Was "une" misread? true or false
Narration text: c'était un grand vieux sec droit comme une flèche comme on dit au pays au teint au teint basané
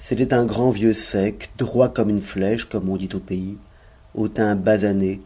false